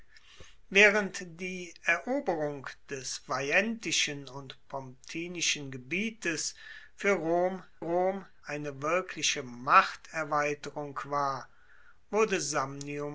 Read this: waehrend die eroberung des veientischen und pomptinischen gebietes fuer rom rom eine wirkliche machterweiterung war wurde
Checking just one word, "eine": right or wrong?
right